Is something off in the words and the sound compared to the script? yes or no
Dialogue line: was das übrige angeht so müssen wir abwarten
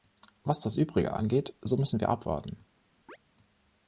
yes